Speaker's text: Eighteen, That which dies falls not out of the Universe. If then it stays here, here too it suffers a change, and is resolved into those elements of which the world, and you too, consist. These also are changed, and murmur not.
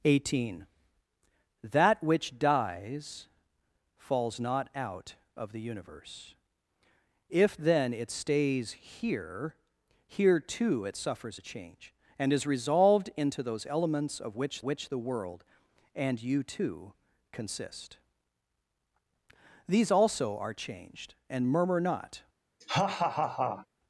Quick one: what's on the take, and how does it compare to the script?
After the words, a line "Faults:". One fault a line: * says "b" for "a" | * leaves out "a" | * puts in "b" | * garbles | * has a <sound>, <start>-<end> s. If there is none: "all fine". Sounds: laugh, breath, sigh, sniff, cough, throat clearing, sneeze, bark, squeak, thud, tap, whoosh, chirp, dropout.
Eighteen, That which dies falls not out of the Universe. If then it stays here, here too it suffers a change, and is resolved into those elements of which which the world, and you too, consist. These also are changed, and murmur not.
Faults:
* puts in "which"
* has a laugh, 22.6-23.7 s